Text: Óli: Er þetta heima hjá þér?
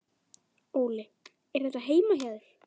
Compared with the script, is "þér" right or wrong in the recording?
right